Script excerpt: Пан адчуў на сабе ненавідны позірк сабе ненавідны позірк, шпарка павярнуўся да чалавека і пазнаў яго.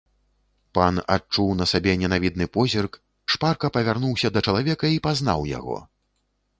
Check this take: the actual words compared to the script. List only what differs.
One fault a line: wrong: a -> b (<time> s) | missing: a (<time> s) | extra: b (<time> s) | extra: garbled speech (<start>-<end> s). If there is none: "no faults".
missing: сабе ненавідны позірк (2.9 s)